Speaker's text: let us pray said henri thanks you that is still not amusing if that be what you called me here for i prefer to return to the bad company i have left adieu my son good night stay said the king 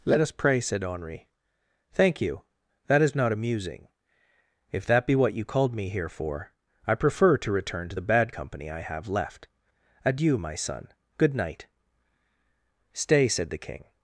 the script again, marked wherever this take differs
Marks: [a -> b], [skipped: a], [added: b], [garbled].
let us pray said henri [thanks -> thank] you that is [skipped: still] not amusing if that be what you called me here for i prefer to return to the bad company i have left adieu my son good night stay said the king